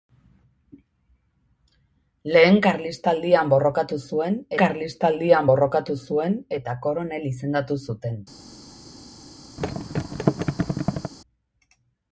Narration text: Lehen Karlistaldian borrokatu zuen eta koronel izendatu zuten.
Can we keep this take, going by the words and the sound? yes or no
no